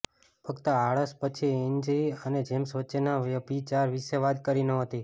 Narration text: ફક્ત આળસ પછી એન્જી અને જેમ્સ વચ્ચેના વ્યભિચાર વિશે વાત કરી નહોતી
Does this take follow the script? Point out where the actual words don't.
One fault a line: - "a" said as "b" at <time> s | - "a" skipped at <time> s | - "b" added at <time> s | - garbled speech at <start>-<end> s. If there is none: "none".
none